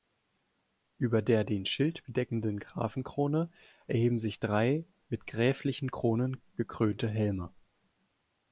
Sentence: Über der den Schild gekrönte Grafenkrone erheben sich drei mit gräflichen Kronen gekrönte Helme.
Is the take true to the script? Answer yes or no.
no